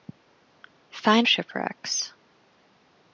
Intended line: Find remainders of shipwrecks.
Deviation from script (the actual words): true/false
true